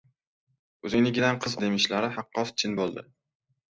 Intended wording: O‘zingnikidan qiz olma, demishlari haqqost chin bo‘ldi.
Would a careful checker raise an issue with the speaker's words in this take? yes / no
yes